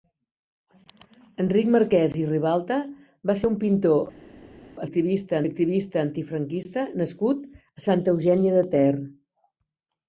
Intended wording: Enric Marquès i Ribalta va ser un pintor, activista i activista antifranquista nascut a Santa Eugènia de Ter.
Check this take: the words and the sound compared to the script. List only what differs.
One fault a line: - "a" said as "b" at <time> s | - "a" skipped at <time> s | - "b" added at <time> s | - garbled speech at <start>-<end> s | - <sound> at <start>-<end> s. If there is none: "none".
none